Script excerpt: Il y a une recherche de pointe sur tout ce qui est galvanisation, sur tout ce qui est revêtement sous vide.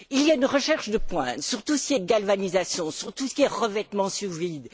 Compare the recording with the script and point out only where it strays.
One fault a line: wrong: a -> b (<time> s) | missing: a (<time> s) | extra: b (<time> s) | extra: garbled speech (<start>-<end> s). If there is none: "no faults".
no faults